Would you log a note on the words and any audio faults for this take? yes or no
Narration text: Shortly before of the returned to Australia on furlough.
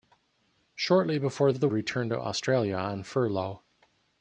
no